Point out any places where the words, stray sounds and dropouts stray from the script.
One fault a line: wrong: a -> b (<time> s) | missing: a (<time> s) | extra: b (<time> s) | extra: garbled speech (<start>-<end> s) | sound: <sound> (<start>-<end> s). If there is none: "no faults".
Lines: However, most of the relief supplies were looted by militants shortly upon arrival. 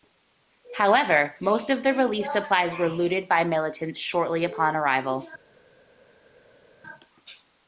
no faults